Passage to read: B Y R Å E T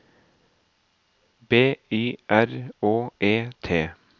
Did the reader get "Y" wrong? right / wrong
right